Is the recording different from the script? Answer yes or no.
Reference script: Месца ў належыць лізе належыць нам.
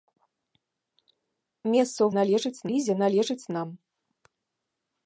no